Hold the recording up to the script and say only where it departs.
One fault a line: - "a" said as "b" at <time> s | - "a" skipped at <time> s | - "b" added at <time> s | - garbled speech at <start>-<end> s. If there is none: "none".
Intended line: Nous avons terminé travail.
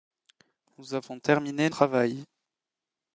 none